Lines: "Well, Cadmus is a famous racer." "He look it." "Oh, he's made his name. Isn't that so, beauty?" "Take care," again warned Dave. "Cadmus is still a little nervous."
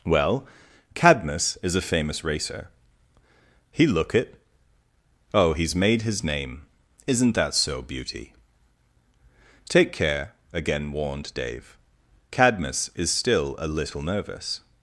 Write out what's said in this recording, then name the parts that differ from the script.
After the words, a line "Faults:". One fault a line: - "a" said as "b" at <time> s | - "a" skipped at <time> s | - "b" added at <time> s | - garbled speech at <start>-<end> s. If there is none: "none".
"Well, Cadmus is a famous racer." "He look it." "Oh, he's made his name. Isn't that so, beauty?" "Take care," again warned Dave. "Cadmus is still a little nervous."
Faults:
none